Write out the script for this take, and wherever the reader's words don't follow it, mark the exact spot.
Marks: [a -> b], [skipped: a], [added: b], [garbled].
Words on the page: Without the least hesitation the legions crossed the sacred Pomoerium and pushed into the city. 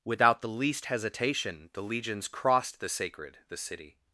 Without the least hesitation the legions crossed the sacred [skipped: Pomoerium and pushed into] the city.